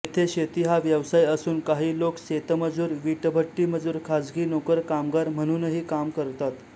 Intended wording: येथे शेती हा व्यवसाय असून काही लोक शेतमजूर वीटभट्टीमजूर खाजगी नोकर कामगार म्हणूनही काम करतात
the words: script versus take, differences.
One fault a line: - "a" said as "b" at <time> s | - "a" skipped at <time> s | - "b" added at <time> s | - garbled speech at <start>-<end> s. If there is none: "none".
none